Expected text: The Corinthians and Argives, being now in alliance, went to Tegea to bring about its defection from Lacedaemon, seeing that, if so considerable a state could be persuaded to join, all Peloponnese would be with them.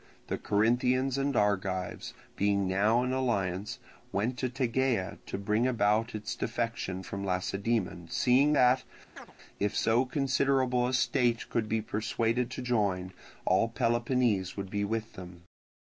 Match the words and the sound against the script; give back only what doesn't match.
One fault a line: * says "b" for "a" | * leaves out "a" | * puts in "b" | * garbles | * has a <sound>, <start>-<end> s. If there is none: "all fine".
* has a chirp, 9.2-9.3 s